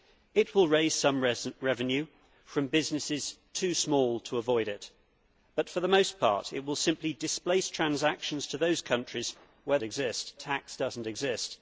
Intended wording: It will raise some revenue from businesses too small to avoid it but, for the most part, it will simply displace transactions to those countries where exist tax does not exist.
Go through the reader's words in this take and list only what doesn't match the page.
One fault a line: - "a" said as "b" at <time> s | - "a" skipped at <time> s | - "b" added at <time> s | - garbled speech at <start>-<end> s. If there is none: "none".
none